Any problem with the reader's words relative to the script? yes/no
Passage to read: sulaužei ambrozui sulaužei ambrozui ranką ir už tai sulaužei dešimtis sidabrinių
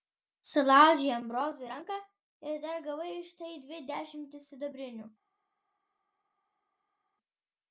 yes